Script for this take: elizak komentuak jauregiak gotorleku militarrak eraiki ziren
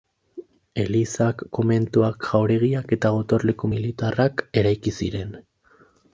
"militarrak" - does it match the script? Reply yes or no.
yes